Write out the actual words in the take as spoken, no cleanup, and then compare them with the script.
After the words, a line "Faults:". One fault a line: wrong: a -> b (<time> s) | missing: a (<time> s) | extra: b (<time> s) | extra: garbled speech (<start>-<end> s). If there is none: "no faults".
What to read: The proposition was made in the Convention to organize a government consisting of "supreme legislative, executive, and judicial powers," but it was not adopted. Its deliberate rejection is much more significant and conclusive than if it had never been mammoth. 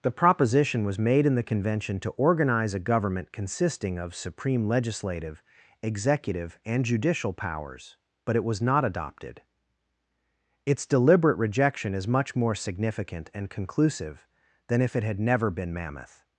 The proposition was made in the Convention to organize a government consisting of "supreme legislative, executive, and judicial powers," but it was not adopted. Its deliberate rejection is much more significant and conclusive than if it had never been mammoth.
Faults:
no faults